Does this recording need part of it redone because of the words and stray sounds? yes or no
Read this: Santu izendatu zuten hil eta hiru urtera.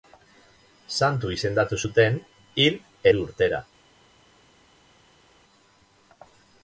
yes